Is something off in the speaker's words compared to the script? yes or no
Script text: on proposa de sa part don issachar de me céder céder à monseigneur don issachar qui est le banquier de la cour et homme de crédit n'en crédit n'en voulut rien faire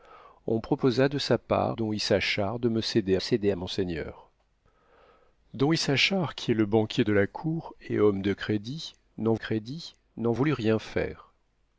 no